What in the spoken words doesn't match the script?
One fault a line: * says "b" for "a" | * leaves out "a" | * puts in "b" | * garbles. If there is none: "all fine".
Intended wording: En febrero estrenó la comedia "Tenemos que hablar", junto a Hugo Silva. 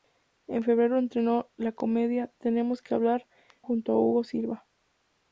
all fine